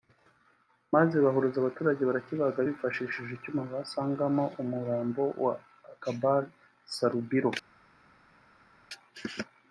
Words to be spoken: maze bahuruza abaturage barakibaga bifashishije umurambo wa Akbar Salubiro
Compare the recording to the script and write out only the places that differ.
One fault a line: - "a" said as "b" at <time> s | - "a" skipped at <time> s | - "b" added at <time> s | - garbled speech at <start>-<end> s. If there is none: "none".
- "icyuma basangamo" added at 3.3 s